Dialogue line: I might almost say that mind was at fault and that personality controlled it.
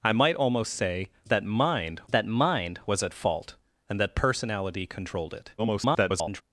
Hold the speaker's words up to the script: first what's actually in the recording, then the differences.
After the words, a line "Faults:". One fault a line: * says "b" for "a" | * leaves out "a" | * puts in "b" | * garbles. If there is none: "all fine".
I might almost say that mind that mind was at fault and that personality controlled it. [garbled]
Faults:
* puts in "that mind"
* garbles